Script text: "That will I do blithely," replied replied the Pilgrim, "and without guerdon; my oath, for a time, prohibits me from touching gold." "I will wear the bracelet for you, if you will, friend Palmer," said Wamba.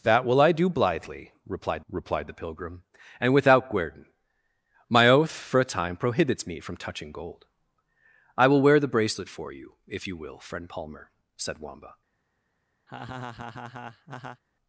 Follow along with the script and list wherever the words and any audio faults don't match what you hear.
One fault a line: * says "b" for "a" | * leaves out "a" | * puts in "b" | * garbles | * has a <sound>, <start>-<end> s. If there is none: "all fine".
* has a laugh, 12.9-14.4 s